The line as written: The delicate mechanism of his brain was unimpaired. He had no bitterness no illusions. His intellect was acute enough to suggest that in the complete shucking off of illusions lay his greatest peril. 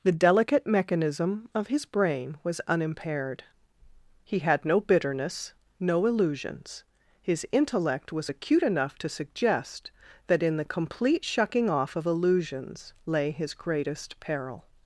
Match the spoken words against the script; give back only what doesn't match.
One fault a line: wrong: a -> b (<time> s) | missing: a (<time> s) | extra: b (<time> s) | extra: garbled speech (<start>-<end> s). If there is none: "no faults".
no faults